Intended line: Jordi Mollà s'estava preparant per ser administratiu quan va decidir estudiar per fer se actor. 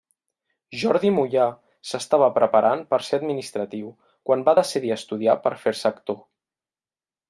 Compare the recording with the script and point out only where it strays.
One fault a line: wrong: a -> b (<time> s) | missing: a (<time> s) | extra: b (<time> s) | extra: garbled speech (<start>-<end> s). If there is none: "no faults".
no faults